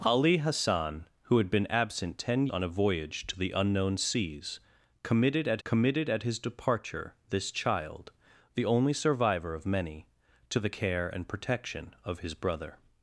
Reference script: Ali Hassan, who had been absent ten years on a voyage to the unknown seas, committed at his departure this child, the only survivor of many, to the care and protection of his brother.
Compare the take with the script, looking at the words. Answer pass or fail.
fail